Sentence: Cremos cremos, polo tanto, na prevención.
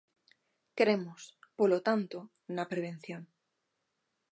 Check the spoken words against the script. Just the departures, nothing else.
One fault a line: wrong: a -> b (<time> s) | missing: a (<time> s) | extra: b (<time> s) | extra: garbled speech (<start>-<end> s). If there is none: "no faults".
missing: cremos (1.2 s)